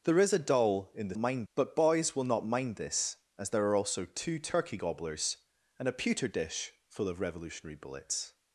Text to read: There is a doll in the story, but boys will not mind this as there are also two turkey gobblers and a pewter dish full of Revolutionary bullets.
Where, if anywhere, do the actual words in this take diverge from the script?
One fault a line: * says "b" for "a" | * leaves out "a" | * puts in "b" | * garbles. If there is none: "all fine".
* says "mind" for "story"